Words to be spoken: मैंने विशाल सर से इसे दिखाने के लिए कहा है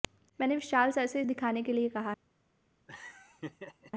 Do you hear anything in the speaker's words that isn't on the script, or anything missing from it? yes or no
yes